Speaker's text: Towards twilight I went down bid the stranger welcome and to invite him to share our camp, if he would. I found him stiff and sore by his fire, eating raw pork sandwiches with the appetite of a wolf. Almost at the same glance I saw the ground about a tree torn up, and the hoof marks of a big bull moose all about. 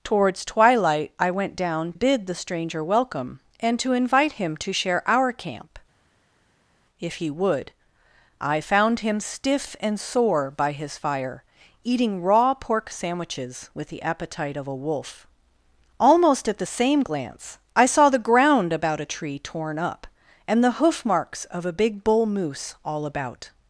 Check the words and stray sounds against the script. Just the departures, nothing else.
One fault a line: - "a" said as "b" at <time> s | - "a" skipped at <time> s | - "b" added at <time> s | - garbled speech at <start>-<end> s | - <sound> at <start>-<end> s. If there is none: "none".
none